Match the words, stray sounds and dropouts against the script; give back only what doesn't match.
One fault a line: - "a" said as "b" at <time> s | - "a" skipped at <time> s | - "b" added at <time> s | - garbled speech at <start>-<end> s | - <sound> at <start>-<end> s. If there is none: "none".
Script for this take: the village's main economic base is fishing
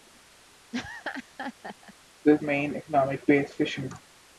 - laugh at 0.7-1.9 s
- "village's" skipped at 2.4 s
- "is" skipped at 3.5 s